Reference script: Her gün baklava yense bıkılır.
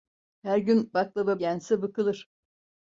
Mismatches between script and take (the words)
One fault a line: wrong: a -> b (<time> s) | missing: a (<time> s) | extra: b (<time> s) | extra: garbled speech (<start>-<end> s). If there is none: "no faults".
no faults